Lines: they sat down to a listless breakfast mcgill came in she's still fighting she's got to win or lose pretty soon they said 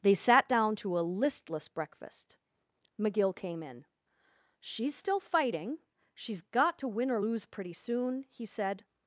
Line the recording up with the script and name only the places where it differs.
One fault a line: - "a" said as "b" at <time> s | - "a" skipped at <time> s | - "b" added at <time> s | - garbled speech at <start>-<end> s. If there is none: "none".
- "they" said as "he" at 8.3 s